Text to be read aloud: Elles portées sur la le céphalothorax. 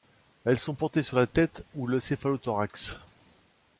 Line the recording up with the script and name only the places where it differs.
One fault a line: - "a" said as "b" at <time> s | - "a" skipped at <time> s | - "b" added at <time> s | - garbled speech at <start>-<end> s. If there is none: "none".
- "sont" added at 0.6 s
- "tête ou" added at 1.3 s